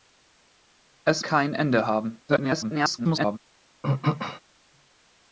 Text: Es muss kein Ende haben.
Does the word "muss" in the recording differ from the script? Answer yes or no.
yes